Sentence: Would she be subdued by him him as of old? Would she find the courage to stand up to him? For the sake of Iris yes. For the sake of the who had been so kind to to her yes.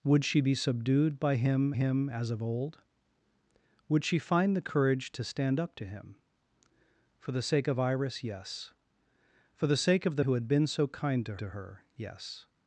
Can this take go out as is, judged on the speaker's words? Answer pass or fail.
pass